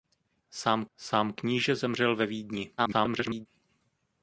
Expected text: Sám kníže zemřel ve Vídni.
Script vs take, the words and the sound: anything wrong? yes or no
yes